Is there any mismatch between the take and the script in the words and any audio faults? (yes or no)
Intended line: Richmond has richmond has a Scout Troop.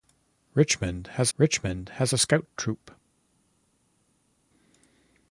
no